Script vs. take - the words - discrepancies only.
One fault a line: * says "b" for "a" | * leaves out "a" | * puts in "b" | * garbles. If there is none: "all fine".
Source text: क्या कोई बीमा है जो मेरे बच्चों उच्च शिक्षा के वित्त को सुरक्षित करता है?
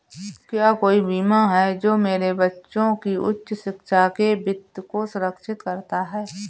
* puts in "की"